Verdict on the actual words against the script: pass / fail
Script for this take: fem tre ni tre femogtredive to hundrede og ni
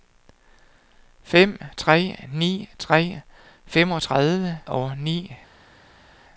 fail